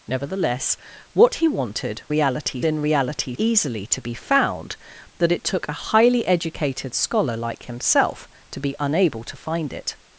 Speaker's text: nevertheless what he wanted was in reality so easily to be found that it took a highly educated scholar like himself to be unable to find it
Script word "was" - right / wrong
wrong